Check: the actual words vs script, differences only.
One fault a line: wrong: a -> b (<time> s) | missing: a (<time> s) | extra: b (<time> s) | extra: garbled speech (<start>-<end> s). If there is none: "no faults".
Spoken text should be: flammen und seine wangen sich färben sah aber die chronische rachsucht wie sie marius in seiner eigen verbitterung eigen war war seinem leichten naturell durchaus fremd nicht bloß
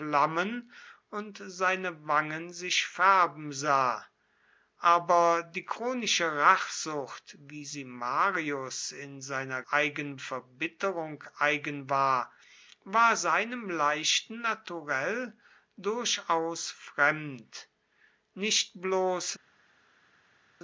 no faults